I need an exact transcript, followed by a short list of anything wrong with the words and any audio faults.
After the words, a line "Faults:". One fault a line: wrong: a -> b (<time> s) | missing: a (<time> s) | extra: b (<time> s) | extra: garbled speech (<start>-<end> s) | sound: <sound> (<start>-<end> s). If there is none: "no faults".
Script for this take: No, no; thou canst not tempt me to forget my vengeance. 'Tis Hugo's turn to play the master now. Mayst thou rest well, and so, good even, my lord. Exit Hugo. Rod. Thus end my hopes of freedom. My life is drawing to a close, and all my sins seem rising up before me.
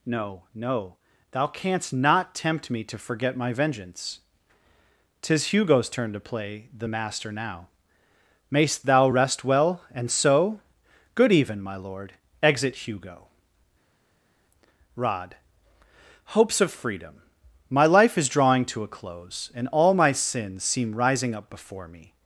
No, no; thou canst not tempt me to forget my vengeance. 'Tis Hugo's turn to play the master now. Mayst thou rest well, and so, good even, my lord. Exit Hugo. Rod. hopes of freedom. My life is drawing to a close, and all my sins seem rising up before me.
Faults:
missing: Thus end my (15.4 s)